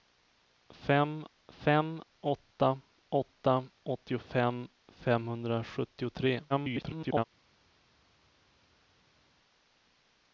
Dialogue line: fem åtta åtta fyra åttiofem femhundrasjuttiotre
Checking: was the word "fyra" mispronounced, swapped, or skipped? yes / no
yes